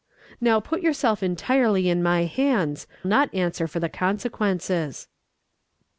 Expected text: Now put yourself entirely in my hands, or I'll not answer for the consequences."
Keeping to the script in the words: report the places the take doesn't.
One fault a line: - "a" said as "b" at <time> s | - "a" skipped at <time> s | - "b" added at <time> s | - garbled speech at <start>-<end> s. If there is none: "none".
- "or I'll" skipped at 2.9 s